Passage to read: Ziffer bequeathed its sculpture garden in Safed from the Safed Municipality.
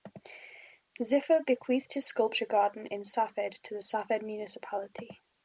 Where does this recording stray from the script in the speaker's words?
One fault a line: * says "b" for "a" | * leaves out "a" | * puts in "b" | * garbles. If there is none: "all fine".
* says "his" for "its"
* says "to" for "from"